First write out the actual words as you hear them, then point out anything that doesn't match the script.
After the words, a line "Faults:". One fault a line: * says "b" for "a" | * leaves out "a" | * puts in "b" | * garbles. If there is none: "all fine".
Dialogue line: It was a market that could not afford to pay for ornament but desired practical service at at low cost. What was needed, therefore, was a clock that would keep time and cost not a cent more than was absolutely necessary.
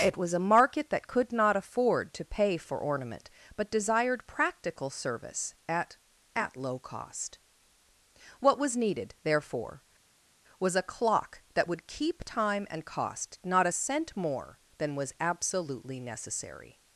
It was a market that could not afford to pay for ornament but desired practical service at at low cost. What was needed, therefore, was a clock that would keep time and cost not a cent more than was absolutely necessary.
Faults:
all fine